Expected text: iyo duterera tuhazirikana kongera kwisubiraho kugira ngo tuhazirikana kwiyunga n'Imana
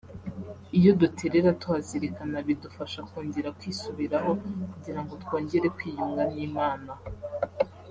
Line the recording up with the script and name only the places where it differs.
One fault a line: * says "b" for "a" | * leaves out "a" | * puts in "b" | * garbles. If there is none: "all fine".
* puts in "bidufasha"
* says "twongere" for "tuhazirikana"